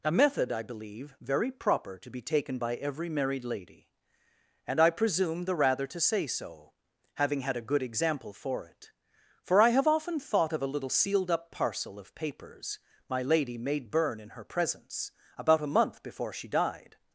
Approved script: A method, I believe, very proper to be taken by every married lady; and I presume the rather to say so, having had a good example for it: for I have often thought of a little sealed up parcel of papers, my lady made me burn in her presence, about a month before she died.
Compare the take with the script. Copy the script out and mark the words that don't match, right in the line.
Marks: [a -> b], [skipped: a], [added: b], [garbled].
A method, I believe, very proper to be taken by every married lady; and I presume the rather to say so, having had a good example for it: for I have often thought of a little sealed up parcel of papers, my lady made [skipped: me] burn in her presence, about a month before she died.